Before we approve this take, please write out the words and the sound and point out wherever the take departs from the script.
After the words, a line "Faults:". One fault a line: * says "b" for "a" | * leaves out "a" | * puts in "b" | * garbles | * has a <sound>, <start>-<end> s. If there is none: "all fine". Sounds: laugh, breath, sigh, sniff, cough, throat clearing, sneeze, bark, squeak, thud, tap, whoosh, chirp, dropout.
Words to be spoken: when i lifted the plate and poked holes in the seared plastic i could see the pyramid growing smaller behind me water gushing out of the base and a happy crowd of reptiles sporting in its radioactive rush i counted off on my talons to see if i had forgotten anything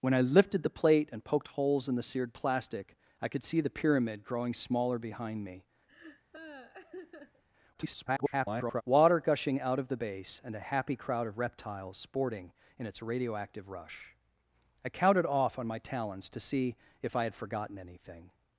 when i lifted the plate and poked holes in the seared plastic i could see the pyramid growing smaller behind me [garbled] water gushing out of the base and a happy crowd of reptiles sporting in its radioactive rush i counted off on my talons to see if i had forgotten anything
Faults:
* has a laugh, 5.9-7.4 s
* garbles